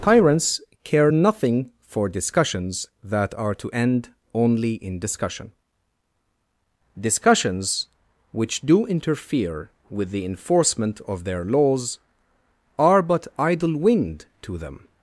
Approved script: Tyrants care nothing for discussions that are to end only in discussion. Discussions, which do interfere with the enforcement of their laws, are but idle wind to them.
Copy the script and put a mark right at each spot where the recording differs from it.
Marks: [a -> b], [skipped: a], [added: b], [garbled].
Tyrants care nothing for discussions that are to end only in discussion. Discussions, which do interfere with the enforcement of their laws, are but idle wind to them.